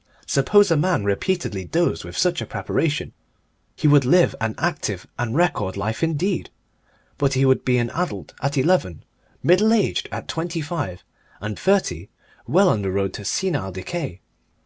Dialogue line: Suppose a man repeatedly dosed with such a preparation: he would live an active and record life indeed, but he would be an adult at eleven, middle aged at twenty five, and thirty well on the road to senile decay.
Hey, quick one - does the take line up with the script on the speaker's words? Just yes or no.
yes